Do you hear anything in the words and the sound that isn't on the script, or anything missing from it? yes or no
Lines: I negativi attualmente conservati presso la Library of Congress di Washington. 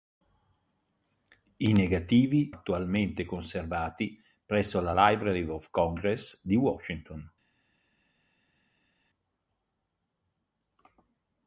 no